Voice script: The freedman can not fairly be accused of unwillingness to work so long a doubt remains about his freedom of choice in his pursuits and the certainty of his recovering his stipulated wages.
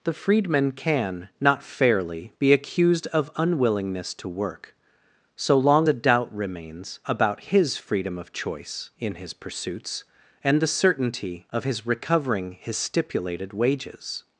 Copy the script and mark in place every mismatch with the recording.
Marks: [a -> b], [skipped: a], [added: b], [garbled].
The freedman can not fairly be accused of unwillingness to work so long a doubt remains about his freedom of choice in his pursuits and the certainty of his recovering his stipulated wages.